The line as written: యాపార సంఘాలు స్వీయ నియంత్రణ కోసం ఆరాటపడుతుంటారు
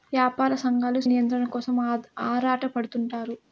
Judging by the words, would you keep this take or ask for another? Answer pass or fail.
fail